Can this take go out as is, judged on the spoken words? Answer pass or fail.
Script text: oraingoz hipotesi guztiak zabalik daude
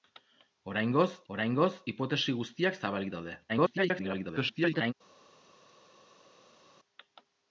fail